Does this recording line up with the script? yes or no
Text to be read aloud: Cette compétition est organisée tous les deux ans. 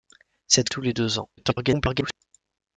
no